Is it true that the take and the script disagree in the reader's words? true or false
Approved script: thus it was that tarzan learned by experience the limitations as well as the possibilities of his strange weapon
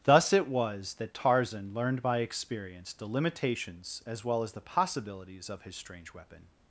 false